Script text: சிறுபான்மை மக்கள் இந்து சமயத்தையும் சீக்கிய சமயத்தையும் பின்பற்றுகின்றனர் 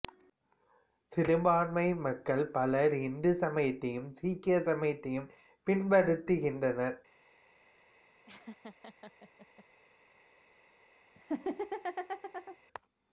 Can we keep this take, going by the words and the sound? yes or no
no